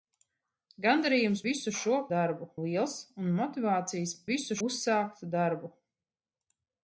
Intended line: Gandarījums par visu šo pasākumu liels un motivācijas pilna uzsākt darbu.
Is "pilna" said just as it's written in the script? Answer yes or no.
no